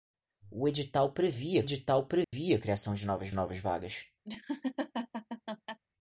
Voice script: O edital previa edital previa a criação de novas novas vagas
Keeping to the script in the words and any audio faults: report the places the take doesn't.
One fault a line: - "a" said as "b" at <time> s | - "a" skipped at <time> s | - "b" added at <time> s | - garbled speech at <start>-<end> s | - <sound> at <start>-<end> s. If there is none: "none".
- dropout at 2.2-2.3 s
- laugh at 4.2-5.8 s